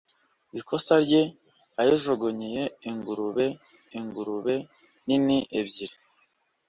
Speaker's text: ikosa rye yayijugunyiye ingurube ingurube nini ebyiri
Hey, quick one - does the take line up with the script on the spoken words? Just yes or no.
yes